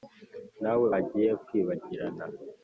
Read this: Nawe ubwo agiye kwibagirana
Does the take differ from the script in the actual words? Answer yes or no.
yes